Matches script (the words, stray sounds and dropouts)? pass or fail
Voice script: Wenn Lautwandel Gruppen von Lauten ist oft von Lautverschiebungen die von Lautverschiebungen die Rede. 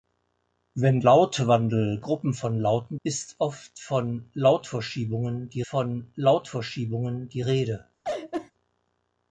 fail